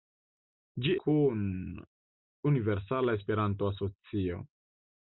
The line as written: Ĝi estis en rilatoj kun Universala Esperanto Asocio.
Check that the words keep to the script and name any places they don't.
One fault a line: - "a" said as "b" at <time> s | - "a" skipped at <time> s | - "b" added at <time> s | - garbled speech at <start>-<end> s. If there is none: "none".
- "estis en rilatoj" skipped at 0.9 s